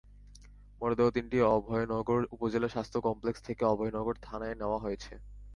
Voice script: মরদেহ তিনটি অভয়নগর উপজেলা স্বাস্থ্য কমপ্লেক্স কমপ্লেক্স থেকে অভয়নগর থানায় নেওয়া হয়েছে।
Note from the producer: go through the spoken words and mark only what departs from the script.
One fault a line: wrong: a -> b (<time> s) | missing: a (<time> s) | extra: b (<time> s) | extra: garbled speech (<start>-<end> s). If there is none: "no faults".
missing: কমপ্লেক্স (3.4 s)